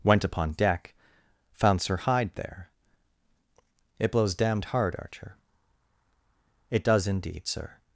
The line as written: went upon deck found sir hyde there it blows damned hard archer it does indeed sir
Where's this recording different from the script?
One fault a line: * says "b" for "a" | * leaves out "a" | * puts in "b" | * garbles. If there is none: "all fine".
all fine